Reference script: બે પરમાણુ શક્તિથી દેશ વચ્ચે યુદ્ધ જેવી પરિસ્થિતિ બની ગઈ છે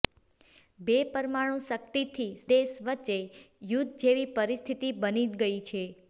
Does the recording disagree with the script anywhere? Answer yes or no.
no